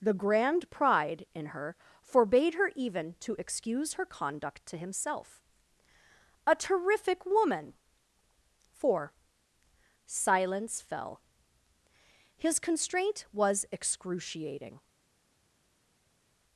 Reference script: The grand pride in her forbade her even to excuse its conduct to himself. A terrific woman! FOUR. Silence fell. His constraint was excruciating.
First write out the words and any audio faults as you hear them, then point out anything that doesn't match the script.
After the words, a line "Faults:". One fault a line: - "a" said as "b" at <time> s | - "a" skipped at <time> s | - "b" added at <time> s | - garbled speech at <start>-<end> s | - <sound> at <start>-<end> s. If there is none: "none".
The grand pride in her forbade her even to excuse her conduct to himself. A terrific woman! FOUR. Silence fell. His constraint was excruciating.
Faults:
- "its" said as "her" at 3.9 s